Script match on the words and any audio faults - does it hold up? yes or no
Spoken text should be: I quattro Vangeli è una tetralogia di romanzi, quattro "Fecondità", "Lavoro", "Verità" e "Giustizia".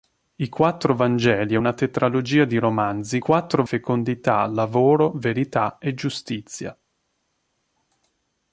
yes